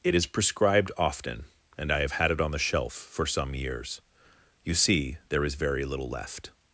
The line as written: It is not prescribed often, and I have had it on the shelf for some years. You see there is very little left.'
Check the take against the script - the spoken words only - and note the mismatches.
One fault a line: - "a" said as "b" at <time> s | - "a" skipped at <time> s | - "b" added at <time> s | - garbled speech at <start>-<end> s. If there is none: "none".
- "not" skipped at 0.2 s